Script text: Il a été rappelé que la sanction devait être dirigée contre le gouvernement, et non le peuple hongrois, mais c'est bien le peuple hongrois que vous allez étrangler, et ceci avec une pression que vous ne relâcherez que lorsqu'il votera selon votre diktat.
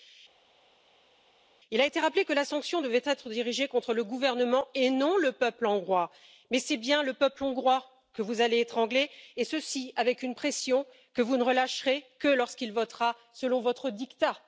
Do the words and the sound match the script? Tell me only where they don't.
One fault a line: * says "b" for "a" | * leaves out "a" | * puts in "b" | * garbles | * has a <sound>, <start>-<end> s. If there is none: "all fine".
all fine